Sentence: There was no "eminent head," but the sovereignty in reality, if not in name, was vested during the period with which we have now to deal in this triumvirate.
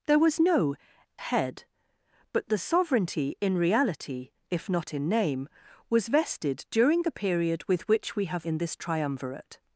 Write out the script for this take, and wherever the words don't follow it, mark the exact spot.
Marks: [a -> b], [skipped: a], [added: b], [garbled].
There was no [skipped: "eminent] head," but the sovereignty in reality, if not in name, was vested during the period with which we have [skipped: now to deal] in this triumvirate.